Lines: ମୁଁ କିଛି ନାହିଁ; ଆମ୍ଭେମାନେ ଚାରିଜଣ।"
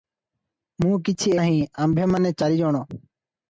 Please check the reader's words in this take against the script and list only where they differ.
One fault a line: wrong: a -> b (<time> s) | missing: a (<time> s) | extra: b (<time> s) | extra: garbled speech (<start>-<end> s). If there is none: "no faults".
no faults